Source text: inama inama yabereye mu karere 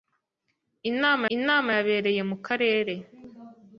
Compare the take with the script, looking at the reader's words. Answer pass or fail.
pass